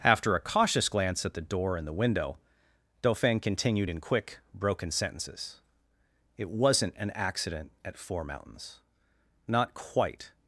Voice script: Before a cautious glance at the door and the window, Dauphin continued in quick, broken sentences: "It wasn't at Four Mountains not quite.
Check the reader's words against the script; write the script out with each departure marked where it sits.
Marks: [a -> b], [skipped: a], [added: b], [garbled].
[Before -> After] a cautious glance at the door and the window, Dauphin continued in quick, broken sentences: "It wasn't [added: an accident] at Four Mountains not quite.